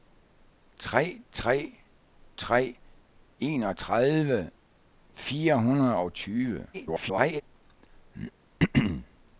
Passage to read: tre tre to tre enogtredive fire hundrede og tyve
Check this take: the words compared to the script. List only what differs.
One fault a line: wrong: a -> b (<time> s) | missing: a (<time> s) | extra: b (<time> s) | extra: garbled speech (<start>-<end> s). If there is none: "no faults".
missing: to (1.8 s)
extra: garbled speech (6.7-7.4 s)